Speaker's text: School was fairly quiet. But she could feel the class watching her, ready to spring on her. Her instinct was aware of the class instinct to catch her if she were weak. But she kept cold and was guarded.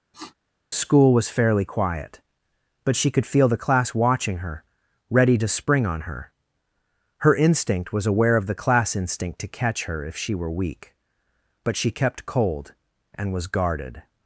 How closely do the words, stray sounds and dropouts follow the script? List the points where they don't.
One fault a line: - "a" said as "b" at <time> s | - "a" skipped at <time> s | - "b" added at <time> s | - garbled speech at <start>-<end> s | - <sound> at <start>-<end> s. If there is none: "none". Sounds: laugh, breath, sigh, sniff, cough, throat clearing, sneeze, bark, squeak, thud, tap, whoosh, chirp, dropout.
- sniff at 0.1-0.3 s